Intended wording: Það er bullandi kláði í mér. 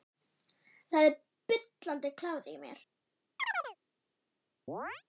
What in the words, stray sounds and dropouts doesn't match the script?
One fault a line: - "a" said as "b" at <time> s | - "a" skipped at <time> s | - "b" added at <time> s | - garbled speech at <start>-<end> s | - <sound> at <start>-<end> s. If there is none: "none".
- chirp at 3.4-3.8 s
- chirp at 4.7-5.0 s